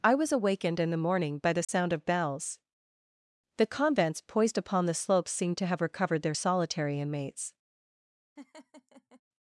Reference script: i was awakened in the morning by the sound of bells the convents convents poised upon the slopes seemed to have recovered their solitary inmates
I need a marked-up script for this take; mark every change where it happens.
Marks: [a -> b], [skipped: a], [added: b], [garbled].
i was awakened in the morning by the sound of bells the convents [skipped: convents] poised upon the slopes seemed to have recovered their solitary inmates